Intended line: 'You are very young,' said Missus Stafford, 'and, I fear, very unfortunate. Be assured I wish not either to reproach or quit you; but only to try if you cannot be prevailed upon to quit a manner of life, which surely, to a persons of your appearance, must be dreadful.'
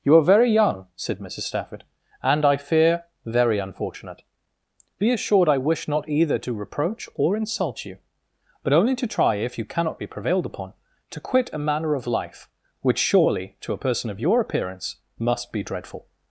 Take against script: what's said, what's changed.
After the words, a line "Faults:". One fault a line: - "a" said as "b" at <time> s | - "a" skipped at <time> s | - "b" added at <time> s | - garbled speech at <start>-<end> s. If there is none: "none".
'You are very young,' said Missus Stafford, 'and, I fear, very unfortunate. Be assured I wish not either to reproach or insult you; but only to try if you cannot be prevailed upon to quit a manner of life, which surely, to a person of your appearance, must be dreadful.'
Faults:
- "quit" said as "insult" at 7.4 s
- "persons" said as "person" at 13.8 s